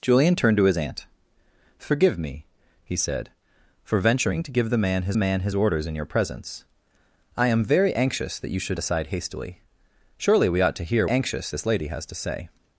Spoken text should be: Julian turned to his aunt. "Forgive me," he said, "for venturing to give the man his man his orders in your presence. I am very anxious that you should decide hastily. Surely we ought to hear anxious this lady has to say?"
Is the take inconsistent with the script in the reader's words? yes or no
no